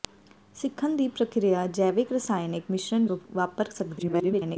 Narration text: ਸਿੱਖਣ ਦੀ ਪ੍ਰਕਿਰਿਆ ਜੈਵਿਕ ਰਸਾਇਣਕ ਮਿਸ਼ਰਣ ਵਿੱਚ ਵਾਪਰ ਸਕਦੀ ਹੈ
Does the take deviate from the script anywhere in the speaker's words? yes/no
yes